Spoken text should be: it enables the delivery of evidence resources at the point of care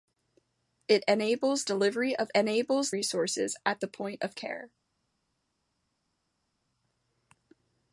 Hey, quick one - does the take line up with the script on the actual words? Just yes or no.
no